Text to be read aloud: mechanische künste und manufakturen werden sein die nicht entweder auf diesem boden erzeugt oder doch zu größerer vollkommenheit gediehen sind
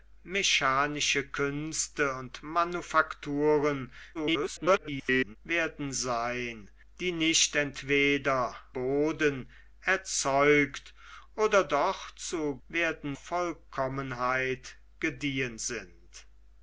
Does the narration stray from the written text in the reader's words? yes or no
yes